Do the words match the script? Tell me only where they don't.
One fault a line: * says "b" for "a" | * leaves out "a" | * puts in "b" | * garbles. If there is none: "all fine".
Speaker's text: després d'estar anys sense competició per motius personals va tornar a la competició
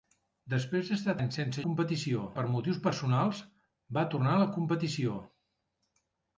all fine